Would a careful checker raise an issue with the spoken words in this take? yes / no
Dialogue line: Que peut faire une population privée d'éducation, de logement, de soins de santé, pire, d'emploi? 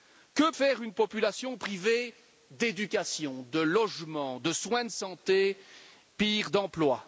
yes